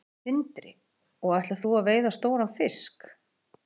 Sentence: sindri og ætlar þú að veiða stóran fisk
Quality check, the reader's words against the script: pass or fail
pass